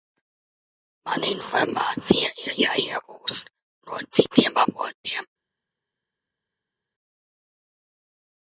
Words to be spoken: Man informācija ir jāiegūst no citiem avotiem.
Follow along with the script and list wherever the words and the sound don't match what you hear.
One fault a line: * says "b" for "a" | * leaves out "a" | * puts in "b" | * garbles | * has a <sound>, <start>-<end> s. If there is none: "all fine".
all fine